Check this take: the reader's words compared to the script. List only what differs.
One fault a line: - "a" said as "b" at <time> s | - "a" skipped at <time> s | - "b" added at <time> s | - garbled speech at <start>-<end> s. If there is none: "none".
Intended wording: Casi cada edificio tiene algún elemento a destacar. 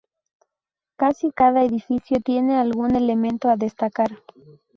none